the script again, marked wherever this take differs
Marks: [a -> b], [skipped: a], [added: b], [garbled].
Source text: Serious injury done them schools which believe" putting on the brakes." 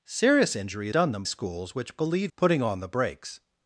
Serious injury done them schools which believe" putting on the brakes."